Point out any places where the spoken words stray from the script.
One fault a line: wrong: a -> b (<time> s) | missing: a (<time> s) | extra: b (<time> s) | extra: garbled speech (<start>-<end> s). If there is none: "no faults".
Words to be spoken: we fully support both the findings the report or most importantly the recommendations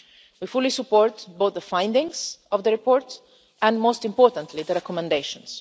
extra: of (2.5 s)
wrong: or -> and (3.6 s)